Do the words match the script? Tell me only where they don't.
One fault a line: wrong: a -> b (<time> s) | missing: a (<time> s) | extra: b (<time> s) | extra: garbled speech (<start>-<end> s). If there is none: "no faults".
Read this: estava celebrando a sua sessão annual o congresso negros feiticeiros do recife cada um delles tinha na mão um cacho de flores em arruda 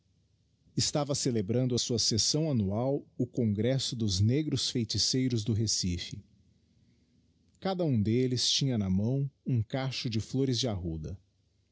extra: dos (4.0 s)
wrong: em -> de (10.6 s)